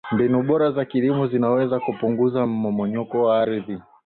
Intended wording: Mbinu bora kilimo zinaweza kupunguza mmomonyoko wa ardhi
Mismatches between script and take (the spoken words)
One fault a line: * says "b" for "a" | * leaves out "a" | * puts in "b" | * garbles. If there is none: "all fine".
* puts in "za"